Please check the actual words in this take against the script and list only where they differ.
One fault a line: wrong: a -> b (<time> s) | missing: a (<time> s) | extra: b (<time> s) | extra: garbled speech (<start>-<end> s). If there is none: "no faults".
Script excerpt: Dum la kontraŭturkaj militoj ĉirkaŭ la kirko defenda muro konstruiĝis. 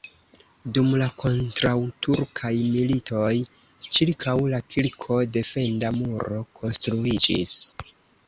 no faults